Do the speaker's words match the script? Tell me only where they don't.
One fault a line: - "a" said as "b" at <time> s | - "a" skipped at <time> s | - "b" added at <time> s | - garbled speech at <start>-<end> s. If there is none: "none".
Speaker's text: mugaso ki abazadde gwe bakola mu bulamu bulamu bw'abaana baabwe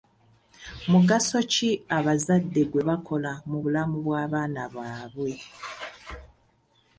- "bulamu" skipped at 4.0 s